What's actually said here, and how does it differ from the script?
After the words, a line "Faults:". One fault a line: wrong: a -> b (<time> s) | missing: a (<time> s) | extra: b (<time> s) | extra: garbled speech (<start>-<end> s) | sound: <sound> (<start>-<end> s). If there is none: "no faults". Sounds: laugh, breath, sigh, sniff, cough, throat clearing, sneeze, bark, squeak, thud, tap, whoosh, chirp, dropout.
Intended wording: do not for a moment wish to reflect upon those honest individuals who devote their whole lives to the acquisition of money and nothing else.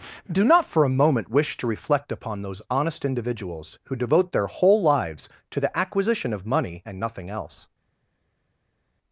do not for a moment wish to reflect upon those honest individuals who devote their whole lives to the acquisition of money and nothing else.
Faults:
no faults